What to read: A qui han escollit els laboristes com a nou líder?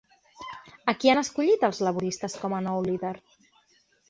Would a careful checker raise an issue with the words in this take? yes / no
no